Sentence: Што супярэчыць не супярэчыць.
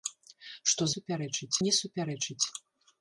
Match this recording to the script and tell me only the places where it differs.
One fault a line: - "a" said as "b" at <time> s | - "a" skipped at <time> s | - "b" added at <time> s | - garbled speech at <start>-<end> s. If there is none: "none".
none